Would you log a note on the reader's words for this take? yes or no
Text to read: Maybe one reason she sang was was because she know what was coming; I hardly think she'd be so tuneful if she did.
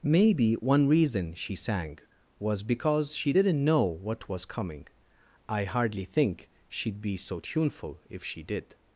yes